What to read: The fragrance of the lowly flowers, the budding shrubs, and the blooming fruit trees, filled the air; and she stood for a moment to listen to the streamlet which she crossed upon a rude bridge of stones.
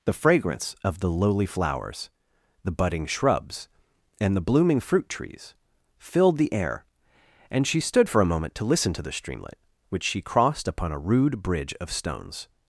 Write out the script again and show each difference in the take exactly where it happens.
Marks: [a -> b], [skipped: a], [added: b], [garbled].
The fragrance of the lowly flowers, the budding shrubs, and the blooming fruit trees, filled the air; and she stood for a moment to listen to the streamlet which she crossed upon a rude bridge of stones.